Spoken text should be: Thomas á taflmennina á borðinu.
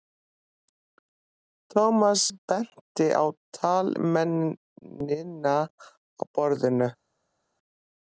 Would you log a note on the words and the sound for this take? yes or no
yes